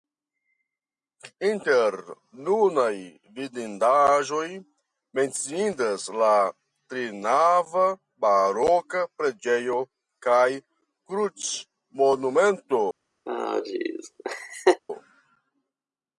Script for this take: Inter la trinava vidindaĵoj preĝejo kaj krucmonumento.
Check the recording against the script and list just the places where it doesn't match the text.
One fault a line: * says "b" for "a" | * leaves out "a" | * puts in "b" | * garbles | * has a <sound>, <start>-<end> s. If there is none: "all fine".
* puts in "nunaj vidindaĵoj menciindas"
* says "baroka" for "vidindaĵoj"
* has a laugh, 13.3-14.8 s